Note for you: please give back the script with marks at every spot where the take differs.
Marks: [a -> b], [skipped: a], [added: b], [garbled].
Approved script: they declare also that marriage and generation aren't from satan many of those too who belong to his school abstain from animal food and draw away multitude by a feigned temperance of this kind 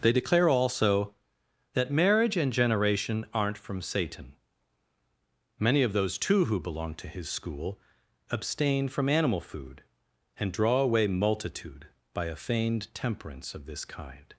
they declare also that marriage and generation aren't from satan many of those too who belong to his school abstain from animal food and draw away multitude by a feigned temperance of this kind